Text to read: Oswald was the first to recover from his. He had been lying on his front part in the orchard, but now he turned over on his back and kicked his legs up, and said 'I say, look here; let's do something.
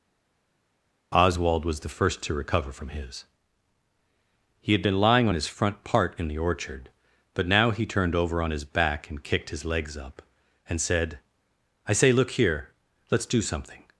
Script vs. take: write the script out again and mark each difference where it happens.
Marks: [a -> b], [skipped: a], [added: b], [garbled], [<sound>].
Oswald was the first to recover from his. He had been lying on his front part in the orchard, but now he turned over on his back and kicked his legs up, and said 'I say, look here; let's do something.